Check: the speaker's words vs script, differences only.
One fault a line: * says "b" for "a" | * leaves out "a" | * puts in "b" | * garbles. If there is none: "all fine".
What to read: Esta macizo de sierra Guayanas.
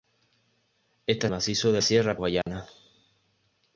all fine